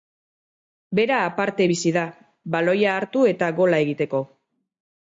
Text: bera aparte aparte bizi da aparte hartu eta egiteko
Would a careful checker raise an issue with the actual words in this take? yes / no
yes